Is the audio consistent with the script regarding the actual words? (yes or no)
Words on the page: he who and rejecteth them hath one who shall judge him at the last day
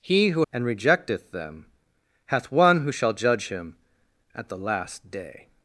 yes